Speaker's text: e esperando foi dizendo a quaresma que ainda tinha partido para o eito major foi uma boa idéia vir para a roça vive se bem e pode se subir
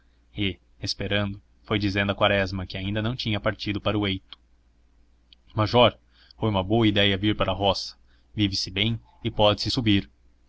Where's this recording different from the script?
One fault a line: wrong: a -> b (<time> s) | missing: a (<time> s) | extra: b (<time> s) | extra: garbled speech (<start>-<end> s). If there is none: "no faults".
extra: não (3.0 s)